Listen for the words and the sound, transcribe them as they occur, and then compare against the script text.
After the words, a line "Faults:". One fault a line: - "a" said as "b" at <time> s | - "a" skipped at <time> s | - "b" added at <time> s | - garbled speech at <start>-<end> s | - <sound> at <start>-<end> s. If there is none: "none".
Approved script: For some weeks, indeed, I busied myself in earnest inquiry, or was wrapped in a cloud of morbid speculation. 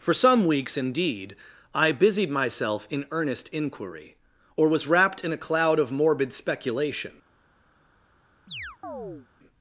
For some weeks, indeed, I busied myself in earnest inquiry, or was wrapped in a cloud of morbid speculation.
Faults:
- chirp at 8.5-9.3 s